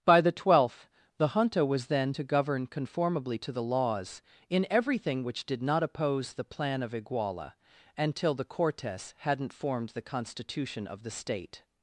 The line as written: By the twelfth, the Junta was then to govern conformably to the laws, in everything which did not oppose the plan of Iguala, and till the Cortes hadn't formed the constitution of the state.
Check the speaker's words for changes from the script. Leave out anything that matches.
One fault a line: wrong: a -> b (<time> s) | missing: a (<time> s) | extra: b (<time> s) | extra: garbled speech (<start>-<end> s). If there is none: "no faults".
no faults